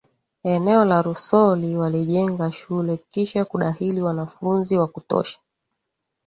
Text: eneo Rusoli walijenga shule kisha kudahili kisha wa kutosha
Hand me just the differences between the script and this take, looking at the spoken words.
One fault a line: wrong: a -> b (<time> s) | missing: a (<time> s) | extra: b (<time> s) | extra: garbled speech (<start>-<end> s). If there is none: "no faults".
extra: la (0.8 s)
wrong: kisha -> wanafunzi (4.0 s)